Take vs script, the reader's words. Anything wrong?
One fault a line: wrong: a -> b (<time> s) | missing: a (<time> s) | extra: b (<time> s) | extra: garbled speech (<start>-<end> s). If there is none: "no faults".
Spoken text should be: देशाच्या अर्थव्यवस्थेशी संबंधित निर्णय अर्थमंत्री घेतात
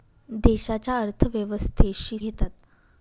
missing: संबंधित निर्णय अर्थमंत्री (2.2 s)